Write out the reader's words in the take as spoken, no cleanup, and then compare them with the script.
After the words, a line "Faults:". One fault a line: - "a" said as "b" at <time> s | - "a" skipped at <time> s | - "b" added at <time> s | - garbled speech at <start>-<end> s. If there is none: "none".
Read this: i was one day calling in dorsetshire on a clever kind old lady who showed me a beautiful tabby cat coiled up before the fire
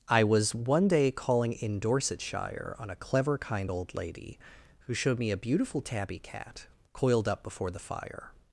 i was one day calling in dorsetshire on a clever kind old lady who showed me a beautiful tabby cat coiled up before the fire
Faults:
none